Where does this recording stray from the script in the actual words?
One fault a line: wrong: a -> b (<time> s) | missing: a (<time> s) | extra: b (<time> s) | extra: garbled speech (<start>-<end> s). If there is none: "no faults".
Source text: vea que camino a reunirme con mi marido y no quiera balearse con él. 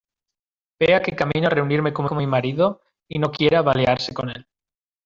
extra: con (2.1 s)